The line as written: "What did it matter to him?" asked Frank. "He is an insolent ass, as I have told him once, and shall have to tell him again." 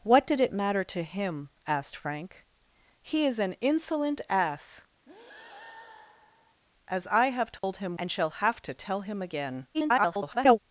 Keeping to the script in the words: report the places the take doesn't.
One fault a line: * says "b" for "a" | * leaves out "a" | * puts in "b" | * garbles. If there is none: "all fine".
* leaves out "once"
* garbles